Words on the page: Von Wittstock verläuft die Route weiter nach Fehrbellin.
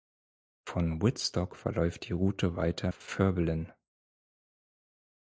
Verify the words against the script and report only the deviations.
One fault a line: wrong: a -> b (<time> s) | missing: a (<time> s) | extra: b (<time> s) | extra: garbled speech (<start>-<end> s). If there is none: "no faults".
missing: nach (2.9 s)